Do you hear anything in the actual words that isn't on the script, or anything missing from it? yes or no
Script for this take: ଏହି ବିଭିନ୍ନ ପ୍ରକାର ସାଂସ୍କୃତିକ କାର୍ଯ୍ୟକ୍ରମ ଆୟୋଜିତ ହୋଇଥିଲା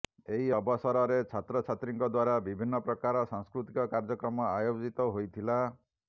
yes